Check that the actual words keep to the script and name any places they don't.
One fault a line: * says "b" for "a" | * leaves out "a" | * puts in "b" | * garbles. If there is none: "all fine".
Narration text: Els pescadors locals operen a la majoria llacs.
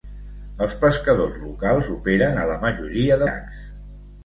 all fine